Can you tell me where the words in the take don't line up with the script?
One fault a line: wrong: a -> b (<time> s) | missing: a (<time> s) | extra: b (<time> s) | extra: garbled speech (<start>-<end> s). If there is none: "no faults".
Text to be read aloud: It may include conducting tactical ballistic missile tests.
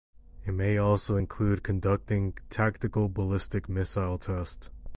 extra: also (0.8 s)